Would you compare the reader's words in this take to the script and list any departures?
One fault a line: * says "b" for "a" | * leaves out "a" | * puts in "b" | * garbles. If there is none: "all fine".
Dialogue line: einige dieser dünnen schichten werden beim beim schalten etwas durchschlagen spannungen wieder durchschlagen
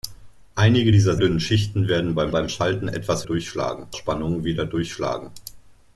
all fine